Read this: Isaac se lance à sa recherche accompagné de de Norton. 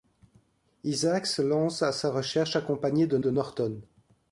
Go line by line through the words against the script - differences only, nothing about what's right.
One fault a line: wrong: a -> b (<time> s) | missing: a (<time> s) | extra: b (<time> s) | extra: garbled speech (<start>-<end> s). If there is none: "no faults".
no faults